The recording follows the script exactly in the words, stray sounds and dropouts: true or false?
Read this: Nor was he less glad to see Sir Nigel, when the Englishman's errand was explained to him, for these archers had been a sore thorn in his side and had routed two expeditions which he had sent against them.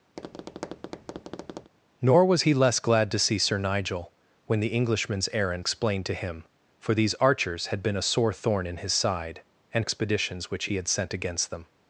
false